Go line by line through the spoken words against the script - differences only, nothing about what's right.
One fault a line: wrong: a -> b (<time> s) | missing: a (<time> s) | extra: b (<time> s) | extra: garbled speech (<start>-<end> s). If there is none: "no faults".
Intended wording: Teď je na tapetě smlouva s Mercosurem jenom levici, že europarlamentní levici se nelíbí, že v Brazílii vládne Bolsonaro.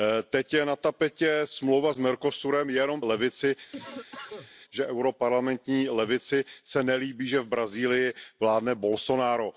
no faults